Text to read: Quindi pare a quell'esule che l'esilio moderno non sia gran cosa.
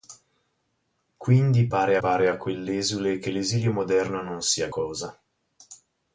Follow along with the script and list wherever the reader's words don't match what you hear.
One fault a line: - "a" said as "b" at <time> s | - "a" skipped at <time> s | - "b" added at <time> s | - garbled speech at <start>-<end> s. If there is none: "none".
- "pare" added at 2.0 s
- "gran" skipped at 4.7 s